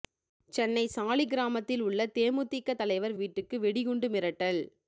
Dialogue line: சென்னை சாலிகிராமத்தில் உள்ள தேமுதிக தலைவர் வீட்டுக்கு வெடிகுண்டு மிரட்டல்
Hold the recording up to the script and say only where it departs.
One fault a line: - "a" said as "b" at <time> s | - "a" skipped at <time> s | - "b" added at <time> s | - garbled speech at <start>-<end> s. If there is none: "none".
none